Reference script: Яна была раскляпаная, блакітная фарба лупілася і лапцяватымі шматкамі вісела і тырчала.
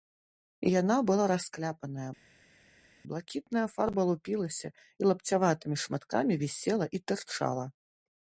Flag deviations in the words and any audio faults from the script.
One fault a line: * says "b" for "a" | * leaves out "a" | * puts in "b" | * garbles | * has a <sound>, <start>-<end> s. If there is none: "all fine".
all fine